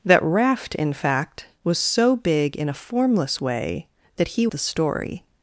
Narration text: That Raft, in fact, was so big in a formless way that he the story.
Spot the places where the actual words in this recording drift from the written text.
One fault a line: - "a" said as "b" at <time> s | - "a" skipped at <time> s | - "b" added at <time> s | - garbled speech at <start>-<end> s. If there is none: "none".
none